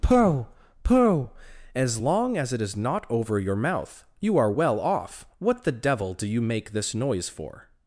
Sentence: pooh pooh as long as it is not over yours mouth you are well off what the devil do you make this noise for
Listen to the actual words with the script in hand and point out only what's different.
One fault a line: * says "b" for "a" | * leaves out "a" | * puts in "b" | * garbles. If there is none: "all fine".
* says "your" for "yours"